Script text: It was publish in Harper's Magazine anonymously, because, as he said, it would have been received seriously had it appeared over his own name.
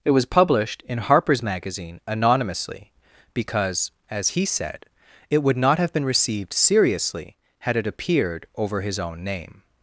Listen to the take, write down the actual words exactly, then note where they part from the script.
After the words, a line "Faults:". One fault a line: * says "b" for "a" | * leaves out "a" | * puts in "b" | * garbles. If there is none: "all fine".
It was published in Harper's Magazine anonymously, because, as he said, it would not have been received seriously had it appeared over his own name.
Faults:
* says "published" for "publish"
* puts in "not"